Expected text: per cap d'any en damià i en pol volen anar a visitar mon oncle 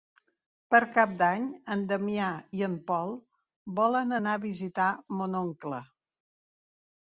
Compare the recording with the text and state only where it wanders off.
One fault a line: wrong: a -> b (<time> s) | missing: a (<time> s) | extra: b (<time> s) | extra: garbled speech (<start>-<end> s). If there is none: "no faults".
no faults